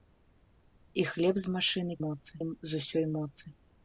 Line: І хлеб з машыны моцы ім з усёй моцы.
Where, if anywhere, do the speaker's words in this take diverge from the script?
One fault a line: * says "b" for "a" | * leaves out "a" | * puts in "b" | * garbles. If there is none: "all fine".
all fine